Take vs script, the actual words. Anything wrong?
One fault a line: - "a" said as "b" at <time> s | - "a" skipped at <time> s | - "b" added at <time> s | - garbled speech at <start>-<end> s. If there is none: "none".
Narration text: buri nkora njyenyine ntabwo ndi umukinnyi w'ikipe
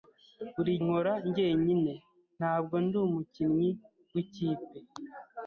none